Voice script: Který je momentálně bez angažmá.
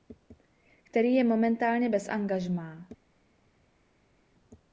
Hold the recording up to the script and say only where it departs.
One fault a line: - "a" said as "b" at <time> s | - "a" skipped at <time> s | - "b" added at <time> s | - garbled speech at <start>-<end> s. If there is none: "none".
none